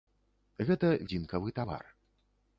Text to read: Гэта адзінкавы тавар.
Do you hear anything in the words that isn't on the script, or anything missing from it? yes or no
no